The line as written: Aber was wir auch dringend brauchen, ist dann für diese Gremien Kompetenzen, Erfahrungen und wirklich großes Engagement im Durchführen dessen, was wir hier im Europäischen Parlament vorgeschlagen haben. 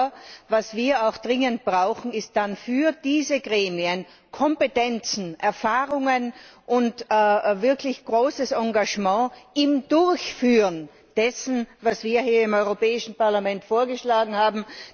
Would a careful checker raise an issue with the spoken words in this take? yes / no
no